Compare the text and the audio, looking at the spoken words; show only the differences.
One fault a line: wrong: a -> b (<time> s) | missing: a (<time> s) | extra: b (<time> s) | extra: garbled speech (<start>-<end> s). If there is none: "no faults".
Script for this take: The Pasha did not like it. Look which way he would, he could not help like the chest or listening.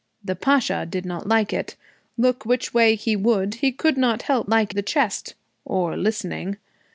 no faults